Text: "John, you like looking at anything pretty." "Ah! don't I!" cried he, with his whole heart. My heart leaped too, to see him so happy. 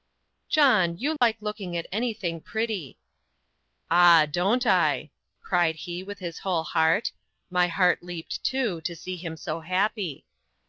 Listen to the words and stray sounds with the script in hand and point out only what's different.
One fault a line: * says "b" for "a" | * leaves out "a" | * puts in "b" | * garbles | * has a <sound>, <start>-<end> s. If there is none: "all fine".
* has a dropout, 1.2-1.2 s